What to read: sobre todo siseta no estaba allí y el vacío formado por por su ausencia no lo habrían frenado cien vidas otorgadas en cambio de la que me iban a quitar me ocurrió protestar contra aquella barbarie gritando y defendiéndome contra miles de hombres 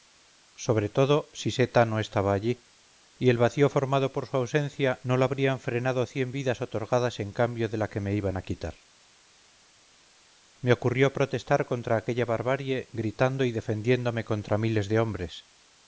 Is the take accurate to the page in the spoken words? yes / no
no